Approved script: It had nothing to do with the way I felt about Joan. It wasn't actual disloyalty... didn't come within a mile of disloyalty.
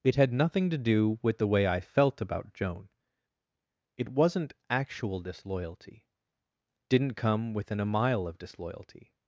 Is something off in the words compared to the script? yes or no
no